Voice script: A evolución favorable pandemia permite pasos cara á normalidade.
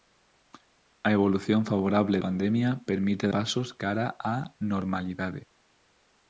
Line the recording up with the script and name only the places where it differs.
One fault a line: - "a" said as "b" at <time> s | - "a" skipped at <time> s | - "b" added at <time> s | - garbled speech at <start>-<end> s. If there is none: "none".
none